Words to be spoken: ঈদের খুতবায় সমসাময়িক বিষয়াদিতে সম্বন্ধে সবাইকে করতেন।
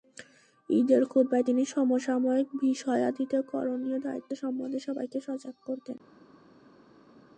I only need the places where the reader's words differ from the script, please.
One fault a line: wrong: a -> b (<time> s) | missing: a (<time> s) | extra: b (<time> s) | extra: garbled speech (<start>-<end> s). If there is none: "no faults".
extra: তিনি (1.4 s)
extra: করণীয় দায়িত্ব (3.5 s)
extra: সজাগ (5.2 s)